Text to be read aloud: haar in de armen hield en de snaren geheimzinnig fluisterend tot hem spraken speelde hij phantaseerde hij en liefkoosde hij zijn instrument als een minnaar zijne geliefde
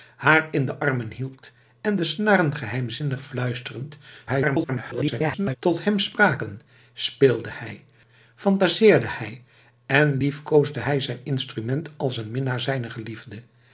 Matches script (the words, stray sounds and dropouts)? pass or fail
fail